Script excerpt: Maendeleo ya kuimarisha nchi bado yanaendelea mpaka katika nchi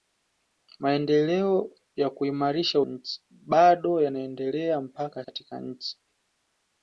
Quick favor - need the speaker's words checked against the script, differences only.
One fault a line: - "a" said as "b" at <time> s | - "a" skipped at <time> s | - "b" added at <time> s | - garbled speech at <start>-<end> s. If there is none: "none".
none